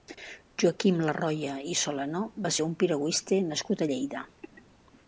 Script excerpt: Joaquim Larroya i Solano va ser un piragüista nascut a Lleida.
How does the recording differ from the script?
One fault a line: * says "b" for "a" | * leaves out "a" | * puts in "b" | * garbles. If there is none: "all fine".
all fine